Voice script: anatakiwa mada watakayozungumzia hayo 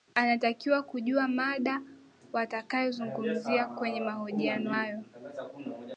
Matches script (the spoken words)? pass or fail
fail